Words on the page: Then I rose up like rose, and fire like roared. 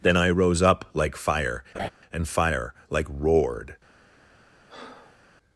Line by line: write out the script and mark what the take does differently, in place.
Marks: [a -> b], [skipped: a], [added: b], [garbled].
Then I rose up like [rose, -> fire] and fire like roared.